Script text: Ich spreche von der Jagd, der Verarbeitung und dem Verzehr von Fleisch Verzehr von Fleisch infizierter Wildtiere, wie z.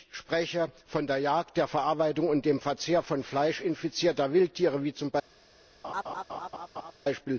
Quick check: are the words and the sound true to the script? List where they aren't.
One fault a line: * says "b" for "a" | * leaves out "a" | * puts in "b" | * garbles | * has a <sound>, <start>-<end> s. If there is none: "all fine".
* leaves out "Verzehr von Fleisch"
* has a laugh, 5.8-6.9 s